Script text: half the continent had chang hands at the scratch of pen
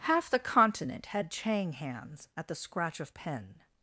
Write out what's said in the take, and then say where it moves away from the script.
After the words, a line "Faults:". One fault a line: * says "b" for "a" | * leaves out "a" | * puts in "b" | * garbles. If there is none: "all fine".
half the continent had chang hands at the scratch of pen
Faults:
all fine